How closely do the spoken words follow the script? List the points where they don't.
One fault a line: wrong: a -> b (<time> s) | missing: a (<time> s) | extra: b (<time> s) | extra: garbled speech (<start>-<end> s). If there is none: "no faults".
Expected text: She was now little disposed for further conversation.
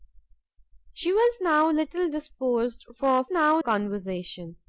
wrong: further -> now (3.3 s)